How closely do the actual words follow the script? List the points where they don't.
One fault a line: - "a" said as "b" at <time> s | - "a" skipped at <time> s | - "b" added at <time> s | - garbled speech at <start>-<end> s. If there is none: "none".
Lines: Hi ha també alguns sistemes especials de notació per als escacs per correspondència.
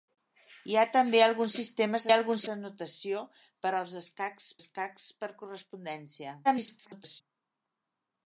- "especials" said as "alguns" at 2.1 s
- "escacs" added at 4.6 s
- garbled speech at 6.4-7.2 s